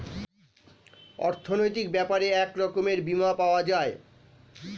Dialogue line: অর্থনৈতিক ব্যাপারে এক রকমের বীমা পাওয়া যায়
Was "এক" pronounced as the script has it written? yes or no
yes